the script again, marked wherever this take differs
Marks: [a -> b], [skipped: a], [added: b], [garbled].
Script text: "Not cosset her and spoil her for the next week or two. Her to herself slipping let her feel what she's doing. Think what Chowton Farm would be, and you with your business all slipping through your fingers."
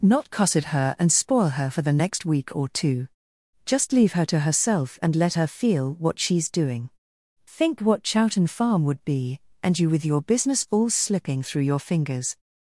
"Not cosset her and spoil her for the next week or two. [added: Just leave] Her to herself [slipping -> and] let her feel what she's doing. Think what Chowton Farm would be, and you with your business all slipping through your fingers."